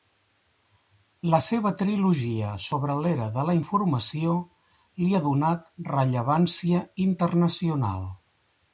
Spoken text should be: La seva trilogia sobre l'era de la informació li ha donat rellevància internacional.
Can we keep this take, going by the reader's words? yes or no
yes